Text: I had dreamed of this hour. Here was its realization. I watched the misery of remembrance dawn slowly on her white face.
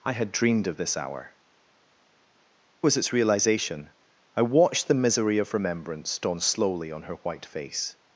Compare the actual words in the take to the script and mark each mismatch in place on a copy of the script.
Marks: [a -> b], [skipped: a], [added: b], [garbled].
I had dreamed of this hour. [skipped: Here] was its realization. I watched the misery of remembrance dawn slowly on her white face.